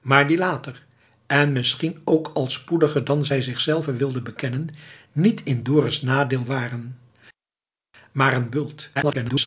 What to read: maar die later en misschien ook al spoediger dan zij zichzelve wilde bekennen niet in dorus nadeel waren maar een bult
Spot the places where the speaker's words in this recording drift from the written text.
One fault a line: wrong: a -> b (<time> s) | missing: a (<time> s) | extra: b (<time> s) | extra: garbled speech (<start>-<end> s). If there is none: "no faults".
extra: garbled speech (9.0-9.5 s)